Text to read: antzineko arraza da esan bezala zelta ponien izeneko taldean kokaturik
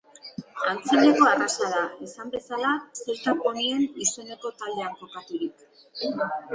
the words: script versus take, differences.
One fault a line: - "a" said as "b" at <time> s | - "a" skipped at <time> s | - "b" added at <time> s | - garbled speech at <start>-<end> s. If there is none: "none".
none